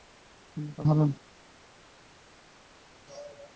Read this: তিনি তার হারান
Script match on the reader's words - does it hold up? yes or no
yes